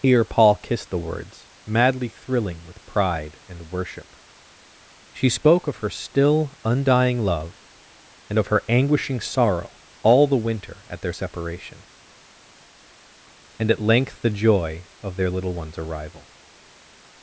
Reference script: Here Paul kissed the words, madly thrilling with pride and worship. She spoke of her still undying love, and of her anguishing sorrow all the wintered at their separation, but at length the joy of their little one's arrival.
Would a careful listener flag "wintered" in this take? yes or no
yes